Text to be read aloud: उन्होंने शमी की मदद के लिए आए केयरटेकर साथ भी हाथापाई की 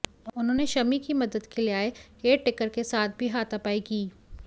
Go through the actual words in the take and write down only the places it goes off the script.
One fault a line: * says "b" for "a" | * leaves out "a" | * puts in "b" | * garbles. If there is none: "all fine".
* puts in "के"